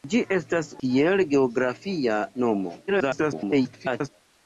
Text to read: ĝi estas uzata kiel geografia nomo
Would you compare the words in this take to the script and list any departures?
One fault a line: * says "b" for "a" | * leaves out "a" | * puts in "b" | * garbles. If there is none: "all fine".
* leaves out "uzata"
* garbles